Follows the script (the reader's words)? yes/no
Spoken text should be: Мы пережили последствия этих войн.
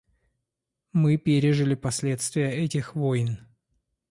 yes